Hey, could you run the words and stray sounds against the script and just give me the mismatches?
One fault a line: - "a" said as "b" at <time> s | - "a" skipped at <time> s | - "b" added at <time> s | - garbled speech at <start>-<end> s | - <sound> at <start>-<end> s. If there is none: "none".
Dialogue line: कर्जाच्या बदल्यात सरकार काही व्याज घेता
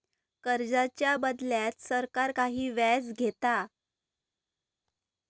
none